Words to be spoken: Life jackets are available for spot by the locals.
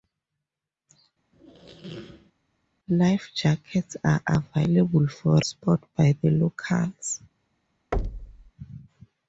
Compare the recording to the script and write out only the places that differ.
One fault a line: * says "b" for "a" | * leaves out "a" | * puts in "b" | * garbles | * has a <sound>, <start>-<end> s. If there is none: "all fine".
* has a squeak, 1.3-2.3 s
* has a thud, 7.9-8.5 s